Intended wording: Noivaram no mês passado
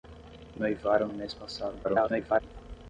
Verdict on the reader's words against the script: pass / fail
fail